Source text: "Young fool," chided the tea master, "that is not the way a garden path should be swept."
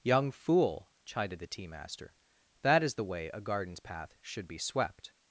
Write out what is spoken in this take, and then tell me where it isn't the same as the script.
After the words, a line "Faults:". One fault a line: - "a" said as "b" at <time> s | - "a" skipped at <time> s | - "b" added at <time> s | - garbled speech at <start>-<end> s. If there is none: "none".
"Young fool," chided the tea master, "that is the way a gardens path should be swept."
Faults:
- "not" skipped at 3.0 s
- "garden" said as "gardens" at 3.4 s